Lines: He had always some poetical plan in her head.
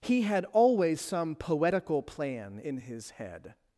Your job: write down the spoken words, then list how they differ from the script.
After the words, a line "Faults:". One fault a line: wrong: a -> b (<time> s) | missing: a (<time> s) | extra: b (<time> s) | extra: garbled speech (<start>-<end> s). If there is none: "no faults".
He had always some poetical plan in his head.
Faults:
wrong: her -> his (2.8 s)